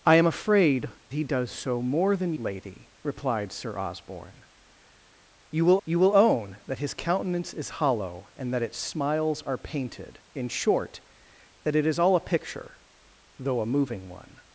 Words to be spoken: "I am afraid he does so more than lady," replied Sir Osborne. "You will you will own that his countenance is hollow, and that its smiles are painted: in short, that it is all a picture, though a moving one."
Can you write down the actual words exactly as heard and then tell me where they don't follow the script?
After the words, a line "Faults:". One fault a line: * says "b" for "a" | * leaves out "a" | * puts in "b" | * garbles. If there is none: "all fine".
"I am afraid he does so more than lady," replied Sir Osborne. "You will you will own that his countenance is hollow, and that its smiles are painted: in short, that it is all a picture, though a moving one."
Faults:
all fine